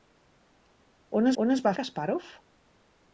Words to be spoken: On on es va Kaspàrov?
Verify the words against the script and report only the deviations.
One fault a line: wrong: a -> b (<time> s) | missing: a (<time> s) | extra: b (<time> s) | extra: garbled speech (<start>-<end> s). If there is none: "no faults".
no faults